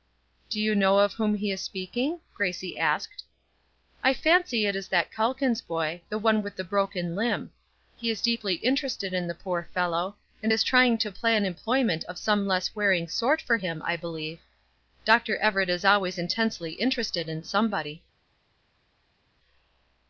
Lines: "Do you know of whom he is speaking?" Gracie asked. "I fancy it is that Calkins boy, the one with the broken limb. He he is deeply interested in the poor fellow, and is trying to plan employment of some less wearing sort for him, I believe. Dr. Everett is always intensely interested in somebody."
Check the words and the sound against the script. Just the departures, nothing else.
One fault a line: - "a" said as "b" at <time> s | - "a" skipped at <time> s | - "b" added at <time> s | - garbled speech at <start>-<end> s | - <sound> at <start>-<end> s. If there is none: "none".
- "he" skipped at 8.1 s